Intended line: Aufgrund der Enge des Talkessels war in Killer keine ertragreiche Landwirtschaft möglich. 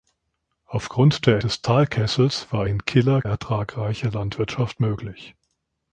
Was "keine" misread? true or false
true